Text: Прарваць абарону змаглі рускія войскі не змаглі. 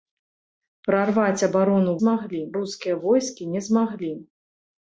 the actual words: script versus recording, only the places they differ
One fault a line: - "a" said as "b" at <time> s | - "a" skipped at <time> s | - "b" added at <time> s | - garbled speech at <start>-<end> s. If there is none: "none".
none